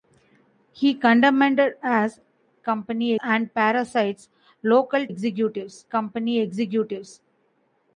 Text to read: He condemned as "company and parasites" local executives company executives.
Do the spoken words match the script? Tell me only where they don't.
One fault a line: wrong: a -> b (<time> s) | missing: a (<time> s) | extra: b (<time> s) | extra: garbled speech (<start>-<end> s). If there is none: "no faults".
no faults